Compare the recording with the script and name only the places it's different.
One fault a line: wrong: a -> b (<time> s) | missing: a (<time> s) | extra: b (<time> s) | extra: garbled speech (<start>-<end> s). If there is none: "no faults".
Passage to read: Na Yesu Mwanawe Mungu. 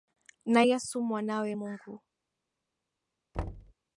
no faults